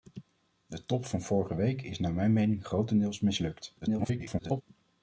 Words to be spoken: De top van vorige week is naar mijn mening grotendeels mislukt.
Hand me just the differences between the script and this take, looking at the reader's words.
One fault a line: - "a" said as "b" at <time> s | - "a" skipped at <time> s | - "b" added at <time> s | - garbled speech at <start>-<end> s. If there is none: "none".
- garbled speech at 3.8-4.6 s